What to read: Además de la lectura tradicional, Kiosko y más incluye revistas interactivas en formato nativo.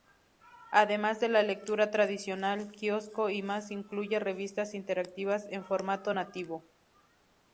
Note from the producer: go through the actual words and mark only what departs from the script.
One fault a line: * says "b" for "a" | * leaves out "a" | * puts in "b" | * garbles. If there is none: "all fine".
all fine